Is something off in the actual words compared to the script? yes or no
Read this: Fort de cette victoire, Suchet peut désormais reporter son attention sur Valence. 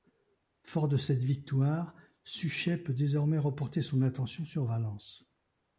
no